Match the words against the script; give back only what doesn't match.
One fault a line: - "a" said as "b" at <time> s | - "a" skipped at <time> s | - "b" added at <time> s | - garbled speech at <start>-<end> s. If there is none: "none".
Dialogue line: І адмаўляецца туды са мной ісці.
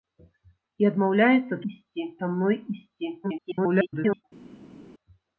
- "туды" said as "ісці" at 1.7 s
- garbled speech at 3.2-4.2 s